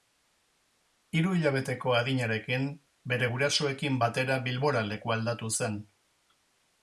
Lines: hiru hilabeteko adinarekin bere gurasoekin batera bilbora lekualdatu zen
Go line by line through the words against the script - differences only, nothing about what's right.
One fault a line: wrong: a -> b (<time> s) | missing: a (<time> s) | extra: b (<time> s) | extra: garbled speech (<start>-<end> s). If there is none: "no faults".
no faults